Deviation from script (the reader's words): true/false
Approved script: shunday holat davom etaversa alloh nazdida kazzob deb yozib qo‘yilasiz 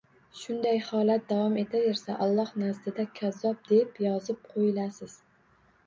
false